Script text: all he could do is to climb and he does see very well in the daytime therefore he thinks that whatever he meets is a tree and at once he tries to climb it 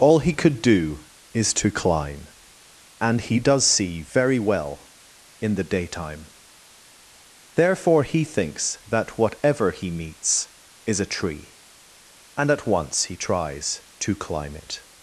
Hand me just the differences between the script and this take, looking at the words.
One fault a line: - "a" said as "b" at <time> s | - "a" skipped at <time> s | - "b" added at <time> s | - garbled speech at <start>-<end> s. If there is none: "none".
none